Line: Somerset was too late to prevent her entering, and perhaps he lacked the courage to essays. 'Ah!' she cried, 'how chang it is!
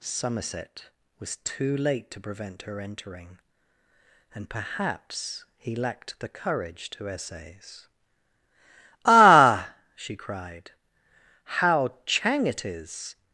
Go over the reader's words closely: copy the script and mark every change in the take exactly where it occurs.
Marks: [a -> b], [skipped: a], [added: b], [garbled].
Somerset was too late to prevent her entering, and perhaps he lacked the courage to essays. 'Ah!' she cried, 'how chang it is!